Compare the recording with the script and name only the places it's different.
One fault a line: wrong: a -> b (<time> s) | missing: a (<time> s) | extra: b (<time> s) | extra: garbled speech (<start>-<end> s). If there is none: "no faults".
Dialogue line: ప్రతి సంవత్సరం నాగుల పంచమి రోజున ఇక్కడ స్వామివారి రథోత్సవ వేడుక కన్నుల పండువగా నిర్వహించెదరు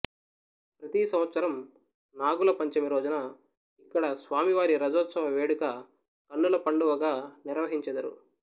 no faults